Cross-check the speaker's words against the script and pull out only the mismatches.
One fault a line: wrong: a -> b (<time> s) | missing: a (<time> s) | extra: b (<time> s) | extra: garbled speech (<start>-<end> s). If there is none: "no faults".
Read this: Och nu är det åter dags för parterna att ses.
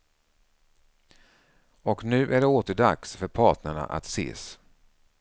no faults